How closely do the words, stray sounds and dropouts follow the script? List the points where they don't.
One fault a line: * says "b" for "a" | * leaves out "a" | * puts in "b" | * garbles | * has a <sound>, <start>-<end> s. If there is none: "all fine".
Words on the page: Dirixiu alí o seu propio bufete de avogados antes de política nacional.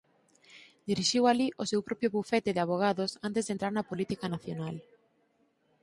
* puts in "entrar na"